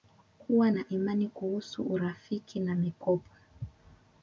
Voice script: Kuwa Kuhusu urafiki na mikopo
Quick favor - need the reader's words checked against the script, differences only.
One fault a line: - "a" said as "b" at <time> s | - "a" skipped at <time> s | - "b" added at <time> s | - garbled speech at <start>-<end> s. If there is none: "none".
- "na imani" added at 0.7 s